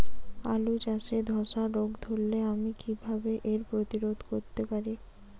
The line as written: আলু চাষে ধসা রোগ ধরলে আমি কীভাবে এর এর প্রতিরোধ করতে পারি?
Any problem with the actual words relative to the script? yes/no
yes